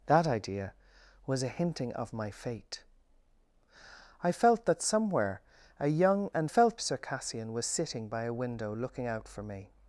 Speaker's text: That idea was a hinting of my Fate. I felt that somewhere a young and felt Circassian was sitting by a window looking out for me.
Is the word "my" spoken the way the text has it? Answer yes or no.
yes